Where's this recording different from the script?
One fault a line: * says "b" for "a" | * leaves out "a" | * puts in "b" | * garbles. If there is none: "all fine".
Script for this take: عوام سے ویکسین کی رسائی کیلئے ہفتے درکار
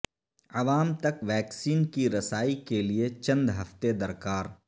* says "تک" for "سے"
* puts in "چند"